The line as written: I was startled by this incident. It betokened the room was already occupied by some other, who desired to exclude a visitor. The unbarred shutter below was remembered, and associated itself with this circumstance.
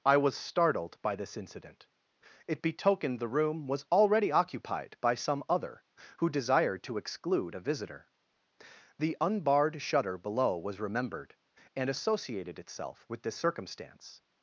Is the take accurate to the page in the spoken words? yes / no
yes